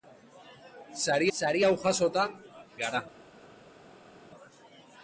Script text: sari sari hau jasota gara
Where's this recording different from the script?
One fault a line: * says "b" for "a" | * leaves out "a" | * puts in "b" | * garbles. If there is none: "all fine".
all fine